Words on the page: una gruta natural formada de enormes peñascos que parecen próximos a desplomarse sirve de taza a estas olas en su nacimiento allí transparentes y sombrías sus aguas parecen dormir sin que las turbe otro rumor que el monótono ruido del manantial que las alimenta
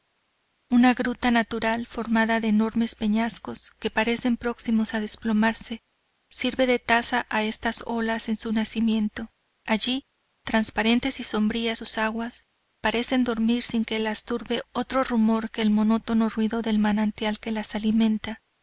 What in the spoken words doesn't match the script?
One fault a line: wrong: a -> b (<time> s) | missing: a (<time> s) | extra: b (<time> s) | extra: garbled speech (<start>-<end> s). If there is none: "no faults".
no faults